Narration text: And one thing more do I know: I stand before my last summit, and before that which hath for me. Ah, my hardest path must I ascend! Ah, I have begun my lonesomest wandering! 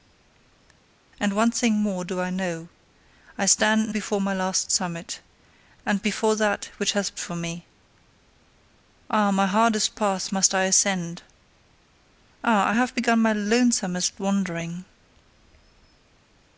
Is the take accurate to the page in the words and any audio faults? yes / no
yes